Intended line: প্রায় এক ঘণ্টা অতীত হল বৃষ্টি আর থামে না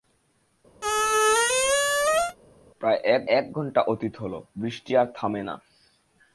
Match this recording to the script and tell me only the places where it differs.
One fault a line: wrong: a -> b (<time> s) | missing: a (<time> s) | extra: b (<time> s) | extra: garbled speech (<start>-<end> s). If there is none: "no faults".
extra: এক (3.3 s)